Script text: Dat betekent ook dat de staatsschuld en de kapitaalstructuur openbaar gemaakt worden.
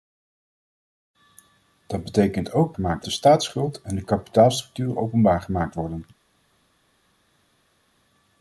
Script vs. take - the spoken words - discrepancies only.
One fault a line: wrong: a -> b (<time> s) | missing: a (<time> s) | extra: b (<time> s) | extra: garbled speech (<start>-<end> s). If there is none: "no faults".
wrong: dat -> gemaakt (2.7 s)